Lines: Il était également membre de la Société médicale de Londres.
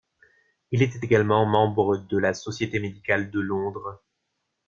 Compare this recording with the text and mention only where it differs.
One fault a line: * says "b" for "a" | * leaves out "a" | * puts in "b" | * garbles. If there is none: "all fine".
all fine